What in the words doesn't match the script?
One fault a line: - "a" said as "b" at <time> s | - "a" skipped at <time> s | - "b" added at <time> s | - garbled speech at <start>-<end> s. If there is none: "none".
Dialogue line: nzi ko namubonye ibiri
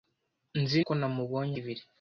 none